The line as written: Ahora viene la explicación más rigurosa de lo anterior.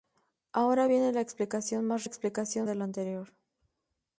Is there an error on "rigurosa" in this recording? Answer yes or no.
yes